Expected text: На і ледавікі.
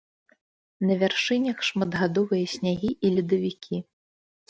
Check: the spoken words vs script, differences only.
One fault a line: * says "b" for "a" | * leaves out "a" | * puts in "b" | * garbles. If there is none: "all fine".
* puts in "вяршынях шматгадовыя снягі"